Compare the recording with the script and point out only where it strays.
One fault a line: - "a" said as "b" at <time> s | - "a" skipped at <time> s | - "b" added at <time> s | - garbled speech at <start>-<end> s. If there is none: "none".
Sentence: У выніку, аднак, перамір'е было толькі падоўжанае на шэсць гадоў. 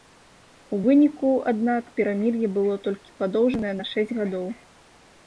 none